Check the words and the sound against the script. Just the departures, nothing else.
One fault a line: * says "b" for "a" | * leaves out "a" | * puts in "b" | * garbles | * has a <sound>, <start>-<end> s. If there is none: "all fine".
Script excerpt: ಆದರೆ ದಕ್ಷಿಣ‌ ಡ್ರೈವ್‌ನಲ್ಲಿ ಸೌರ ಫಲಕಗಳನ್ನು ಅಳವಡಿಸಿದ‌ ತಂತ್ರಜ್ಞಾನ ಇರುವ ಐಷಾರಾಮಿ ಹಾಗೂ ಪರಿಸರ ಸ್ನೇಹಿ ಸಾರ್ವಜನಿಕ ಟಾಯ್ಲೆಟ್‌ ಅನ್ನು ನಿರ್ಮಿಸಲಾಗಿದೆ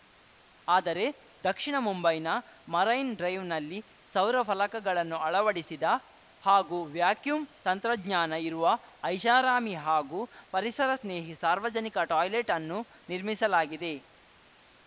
* puts in "ಮುಂಬೈನ ಮರೈನ್"
* puts in "ಹಾಗೂ ವ್ಯಾಕ್ಯೂಮ್"